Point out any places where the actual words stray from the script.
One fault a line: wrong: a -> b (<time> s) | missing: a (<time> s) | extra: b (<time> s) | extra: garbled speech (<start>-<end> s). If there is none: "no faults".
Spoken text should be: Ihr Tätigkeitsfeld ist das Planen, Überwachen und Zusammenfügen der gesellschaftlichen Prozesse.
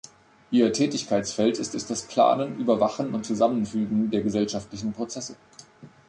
extra: ist (1.7 s)